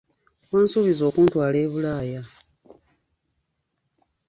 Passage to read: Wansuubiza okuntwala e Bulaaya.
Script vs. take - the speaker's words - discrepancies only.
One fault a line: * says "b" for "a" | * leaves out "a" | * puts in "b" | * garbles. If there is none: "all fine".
all fine